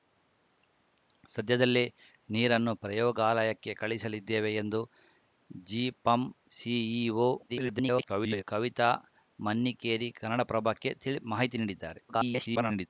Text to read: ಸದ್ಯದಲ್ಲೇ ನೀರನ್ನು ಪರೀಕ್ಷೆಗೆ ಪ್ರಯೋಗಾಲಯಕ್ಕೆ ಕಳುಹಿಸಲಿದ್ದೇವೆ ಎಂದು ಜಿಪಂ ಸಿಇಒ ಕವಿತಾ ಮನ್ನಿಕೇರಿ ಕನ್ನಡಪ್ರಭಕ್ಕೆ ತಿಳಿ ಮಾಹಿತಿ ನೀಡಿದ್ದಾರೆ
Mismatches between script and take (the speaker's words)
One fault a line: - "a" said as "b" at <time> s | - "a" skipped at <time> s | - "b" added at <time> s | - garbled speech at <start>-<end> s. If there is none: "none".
- "ಪರೀಕ್ಷೆಗೆ" skipped at 2.7 s
- garbled speech at 7.5-8.4 s
- garbled speech at 12.1-12.9 s